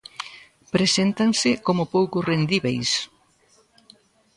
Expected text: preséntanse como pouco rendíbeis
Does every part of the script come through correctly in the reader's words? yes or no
yes